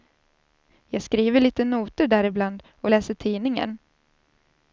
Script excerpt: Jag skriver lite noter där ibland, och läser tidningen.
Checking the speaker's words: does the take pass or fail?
pass